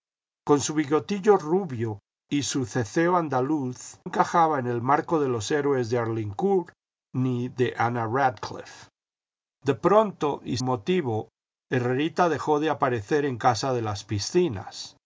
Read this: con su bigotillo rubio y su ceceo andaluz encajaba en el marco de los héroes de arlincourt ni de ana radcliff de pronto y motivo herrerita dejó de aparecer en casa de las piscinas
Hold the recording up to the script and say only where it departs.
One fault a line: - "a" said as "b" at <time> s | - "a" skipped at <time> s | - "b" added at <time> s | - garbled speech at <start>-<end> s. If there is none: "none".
none